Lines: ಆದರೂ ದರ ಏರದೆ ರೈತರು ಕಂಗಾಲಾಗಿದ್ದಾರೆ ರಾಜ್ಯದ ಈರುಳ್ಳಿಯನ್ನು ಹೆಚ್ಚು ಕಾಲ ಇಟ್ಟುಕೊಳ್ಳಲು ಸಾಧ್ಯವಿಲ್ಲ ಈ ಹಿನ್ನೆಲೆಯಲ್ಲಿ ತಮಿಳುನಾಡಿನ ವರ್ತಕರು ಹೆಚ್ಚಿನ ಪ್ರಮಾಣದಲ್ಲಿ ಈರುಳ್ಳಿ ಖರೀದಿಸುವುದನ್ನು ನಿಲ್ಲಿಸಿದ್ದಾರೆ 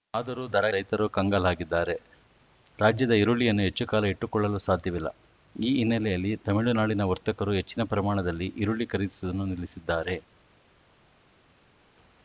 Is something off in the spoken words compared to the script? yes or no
yes